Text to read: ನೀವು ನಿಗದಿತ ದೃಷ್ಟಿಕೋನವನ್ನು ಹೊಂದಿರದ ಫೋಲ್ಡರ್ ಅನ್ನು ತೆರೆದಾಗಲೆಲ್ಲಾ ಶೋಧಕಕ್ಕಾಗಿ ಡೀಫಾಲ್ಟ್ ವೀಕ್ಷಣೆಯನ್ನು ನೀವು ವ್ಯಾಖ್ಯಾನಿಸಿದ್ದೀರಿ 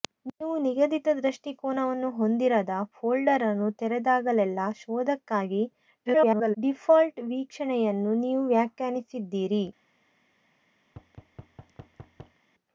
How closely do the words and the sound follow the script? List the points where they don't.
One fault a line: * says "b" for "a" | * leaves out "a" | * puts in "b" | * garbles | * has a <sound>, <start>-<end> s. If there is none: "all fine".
* garbles
* has a thud, 10.9-12.4 s